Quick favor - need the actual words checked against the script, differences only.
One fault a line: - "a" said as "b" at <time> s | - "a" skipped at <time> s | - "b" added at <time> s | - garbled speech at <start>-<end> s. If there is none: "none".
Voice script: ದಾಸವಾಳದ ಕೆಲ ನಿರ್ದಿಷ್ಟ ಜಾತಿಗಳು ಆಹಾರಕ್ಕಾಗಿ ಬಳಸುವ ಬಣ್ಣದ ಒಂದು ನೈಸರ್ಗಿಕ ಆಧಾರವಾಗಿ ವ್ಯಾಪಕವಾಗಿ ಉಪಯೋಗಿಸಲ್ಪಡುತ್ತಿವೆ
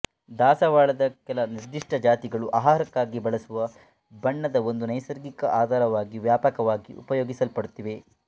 none